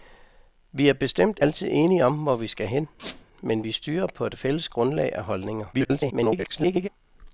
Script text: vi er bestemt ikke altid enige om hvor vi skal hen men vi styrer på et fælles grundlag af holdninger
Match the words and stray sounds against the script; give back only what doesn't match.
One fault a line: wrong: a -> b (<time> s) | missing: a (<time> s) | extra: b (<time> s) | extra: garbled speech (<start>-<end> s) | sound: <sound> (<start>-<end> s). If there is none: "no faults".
missing: ikke (1.4 s)
sound: squeak (3.0-3.3 s)
extra: garbled speech (5.7-6.9 s)